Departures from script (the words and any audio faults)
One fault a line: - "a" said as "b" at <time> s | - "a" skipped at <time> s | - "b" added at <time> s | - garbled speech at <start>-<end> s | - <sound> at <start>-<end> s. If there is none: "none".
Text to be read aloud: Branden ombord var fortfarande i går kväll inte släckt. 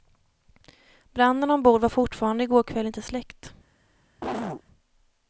- cough at 4.2-4.6 s